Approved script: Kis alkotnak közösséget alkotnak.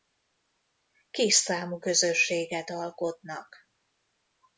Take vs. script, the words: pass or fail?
fail